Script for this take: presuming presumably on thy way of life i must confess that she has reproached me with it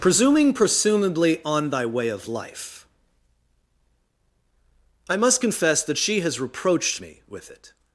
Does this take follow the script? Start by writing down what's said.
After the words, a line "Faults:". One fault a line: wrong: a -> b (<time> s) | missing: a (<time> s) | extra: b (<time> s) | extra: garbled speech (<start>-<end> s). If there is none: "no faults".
presuming presumably on thy way of life i must confess that she has reproached me with it
Faults:
no faults